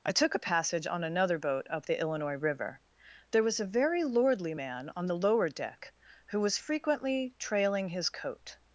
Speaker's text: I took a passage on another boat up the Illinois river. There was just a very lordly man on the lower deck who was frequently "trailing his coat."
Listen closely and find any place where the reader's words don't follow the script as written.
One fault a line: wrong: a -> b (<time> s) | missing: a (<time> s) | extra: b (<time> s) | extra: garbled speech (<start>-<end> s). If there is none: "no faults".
missing: just (3.6 s)